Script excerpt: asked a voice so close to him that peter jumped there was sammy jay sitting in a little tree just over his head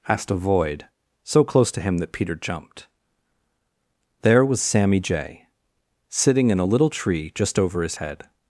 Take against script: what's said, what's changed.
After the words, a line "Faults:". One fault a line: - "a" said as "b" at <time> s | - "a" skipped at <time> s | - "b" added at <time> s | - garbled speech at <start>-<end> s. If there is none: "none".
asked a void so close to him that peter jumped there was sammy jay sitting in a little tree just over his head
Faults:
- "voice" said as "void" at 0.3 s